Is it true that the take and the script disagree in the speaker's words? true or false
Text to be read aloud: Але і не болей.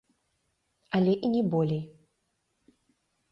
false